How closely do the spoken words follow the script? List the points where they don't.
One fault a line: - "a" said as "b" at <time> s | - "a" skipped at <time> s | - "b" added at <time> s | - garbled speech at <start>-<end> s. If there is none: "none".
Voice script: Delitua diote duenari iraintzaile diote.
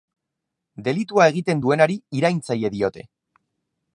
- "diote" said as "egiten" at 1.3 s